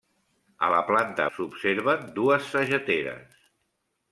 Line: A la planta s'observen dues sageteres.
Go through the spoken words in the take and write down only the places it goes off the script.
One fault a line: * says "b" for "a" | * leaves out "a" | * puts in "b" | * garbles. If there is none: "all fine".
all fine